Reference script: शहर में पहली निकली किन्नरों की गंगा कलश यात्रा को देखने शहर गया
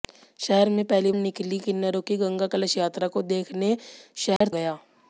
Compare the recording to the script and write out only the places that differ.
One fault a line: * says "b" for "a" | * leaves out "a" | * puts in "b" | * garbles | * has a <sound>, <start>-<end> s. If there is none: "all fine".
* has a dropout, 4.4-4.4 s